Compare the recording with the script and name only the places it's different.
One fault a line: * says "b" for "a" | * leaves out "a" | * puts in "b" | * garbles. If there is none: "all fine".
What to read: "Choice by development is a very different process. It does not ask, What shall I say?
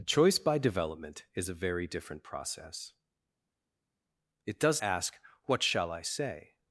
* leaves out "not"